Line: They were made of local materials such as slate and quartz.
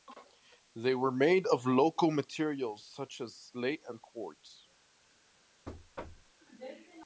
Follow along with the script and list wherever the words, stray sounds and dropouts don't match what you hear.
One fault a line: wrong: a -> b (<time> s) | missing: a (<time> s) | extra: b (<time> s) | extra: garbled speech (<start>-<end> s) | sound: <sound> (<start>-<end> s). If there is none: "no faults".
sound: thud (5.7-6.3 s)